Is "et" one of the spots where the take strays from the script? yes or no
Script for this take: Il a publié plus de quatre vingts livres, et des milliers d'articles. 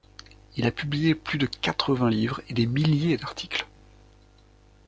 no